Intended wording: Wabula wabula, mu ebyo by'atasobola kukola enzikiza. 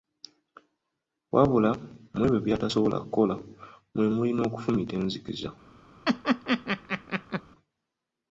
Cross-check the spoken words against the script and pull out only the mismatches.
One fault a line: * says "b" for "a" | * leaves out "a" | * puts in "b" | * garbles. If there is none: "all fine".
* leaves out "wabula"
* puts in "mwe muli n'okufumita"